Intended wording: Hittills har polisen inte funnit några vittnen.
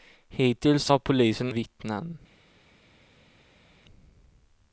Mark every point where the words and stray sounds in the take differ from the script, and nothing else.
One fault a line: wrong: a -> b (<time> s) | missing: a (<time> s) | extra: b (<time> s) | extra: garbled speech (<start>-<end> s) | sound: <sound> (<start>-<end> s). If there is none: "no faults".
missing: inte funnit några (1.5 s)